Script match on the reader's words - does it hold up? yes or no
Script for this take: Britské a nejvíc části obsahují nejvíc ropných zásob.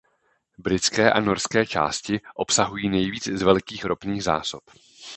no